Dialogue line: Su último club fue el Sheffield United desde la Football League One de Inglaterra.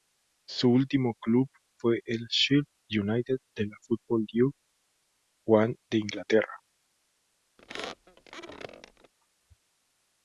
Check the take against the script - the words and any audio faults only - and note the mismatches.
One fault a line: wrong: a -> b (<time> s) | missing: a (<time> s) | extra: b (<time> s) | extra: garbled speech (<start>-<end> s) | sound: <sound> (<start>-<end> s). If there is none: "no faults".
wrong: desde -> de (3.5 s)
sound: squeak (7.6-9.1 s)